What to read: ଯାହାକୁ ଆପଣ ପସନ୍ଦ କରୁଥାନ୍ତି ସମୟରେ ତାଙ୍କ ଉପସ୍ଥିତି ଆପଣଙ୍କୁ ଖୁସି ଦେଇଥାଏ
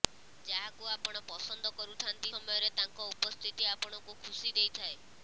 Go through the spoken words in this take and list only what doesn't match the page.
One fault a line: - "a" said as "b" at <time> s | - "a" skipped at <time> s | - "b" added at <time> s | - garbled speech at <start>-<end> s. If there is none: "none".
none